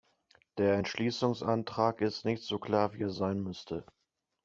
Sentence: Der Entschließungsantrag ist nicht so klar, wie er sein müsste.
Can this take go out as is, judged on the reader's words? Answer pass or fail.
pass